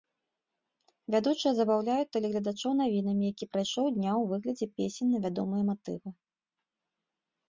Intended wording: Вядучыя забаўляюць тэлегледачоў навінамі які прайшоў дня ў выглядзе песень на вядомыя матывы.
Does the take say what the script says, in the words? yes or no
yes